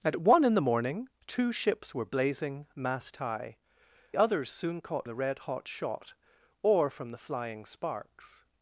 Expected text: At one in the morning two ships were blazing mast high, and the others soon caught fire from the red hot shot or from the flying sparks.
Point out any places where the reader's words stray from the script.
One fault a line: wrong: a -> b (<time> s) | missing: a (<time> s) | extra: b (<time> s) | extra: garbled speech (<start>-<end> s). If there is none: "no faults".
missing: and the (3.6 s)
missing: fire from (5.1 s)